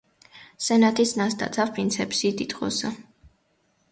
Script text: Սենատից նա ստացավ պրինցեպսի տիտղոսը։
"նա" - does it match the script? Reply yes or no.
yes